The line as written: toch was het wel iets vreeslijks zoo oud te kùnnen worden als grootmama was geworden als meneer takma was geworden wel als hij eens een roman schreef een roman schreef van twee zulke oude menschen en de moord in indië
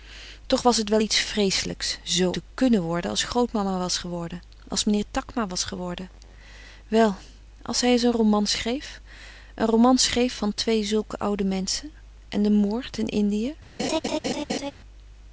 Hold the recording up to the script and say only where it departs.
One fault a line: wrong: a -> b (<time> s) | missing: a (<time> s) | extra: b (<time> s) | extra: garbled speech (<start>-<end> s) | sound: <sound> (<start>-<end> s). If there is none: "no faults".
missing: oud (2.3 s)
sound: laugh (13.8-14.7 s)